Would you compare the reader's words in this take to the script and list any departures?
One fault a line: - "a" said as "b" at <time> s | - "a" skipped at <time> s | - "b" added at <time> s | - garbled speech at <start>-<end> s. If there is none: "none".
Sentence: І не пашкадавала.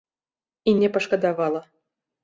none